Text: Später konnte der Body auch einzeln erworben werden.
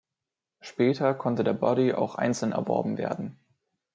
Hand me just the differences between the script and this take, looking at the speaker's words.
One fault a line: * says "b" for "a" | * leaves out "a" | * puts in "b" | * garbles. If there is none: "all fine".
all fine